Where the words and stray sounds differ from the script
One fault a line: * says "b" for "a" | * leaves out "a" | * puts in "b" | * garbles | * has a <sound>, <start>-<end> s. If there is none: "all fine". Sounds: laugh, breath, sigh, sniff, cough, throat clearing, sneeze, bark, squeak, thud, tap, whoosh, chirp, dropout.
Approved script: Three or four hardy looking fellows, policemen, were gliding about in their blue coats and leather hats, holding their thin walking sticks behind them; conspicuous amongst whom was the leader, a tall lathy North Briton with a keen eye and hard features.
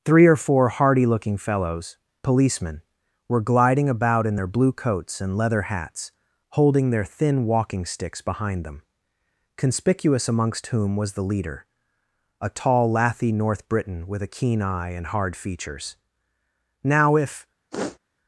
* puts in "Now if"
* has a sniff, 17.7-18.0 s